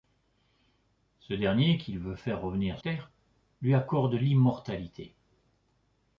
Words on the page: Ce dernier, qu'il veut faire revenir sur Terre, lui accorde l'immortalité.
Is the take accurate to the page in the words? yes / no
no